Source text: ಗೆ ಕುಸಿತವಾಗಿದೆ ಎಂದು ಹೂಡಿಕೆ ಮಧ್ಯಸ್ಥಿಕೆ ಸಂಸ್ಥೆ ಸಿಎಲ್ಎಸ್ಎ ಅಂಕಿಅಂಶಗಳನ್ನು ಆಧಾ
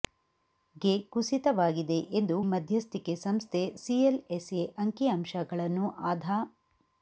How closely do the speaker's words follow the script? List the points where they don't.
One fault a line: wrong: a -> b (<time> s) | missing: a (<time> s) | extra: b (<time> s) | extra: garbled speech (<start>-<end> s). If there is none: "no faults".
missing: ಹೂಡಿಕೆ (2.4 s)